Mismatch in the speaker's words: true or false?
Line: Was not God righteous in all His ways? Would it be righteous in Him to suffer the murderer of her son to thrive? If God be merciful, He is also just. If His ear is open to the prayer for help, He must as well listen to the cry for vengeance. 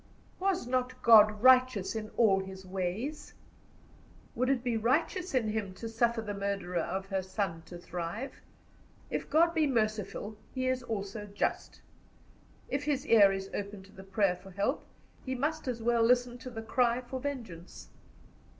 false